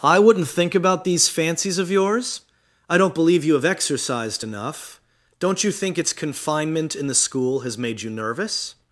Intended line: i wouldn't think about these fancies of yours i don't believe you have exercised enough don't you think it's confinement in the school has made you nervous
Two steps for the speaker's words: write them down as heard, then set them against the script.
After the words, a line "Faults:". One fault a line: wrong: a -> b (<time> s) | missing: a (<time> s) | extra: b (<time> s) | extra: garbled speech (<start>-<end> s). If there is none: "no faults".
i wouldn't think about these fancies of yours i don't believe you have exercised enough don't you think it's confinement in the school has made you nervous
Faults:
no faults